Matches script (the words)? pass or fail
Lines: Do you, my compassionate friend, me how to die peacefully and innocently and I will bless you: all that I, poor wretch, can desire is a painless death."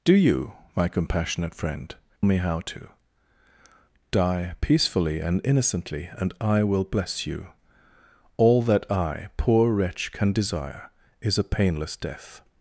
pass